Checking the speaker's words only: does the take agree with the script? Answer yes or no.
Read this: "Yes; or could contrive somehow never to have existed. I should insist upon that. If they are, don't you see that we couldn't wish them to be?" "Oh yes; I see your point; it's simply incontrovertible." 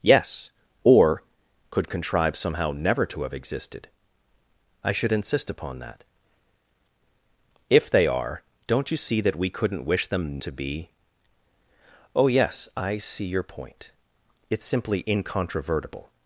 yes